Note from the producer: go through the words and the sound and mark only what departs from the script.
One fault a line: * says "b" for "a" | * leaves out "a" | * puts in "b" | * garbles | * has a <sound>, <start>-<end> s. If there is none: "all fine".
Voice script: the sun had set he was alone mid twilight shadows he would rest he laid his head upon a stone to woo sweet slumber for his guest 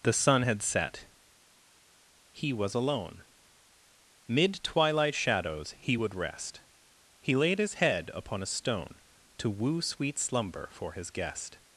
all fine